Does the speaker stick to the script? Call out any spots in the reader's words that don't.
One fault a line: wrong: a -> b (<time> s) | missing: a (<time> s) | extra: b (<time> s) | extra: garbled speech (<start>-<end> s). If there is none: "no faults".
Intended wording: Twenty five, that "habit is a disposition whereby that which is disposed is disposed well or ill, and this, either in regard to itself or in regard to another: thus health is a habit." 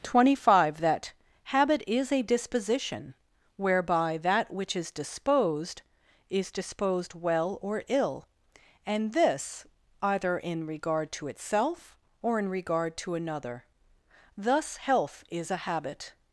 no faults